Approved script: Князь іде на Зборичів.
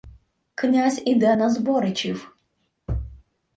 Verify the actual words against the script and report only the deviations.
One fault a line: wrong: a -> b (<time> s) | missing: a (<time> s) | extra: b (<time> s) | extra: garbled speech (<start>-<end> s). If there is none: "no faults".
no faults